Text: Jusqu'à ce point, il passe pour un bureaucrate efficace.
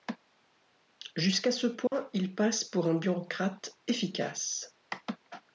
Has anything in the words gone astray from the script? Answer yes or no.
no